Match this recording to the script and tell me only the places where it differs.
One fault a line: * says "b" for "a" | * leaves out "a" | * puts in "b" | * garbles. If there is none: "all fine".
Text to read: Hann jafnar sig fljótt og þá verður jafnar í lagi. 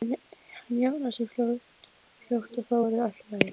* says "allt" for "jafnar"